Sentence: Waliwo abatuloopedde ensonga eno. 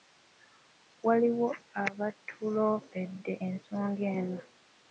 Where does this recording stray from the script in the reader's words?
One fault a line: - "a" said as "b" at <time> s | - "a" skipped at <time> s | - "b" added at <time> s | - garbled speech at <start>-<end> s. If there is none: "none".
none